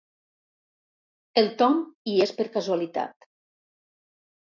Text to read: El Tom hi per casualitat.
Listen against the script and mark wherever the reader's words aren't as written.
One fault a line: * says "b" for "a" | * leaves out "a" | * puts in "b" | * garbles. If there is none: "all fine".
* puts in "és"